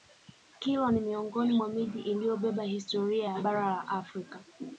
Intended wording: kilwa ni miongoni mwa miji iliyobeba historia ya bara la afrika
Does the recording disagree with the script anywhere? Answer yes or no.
no